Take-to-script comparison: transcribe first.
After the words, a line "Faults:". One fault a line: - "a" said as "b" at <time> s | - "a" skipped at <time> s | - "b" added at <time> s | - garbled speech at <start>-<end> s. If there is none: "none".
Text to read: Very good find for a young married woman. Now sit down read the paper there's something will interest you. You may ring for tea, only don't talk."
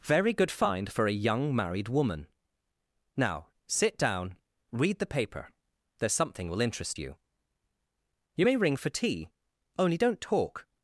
Very good find for a young married woman. Now sit down read the paper there's something will interest you. You may ring for tea, only don't talk."
Faults:
none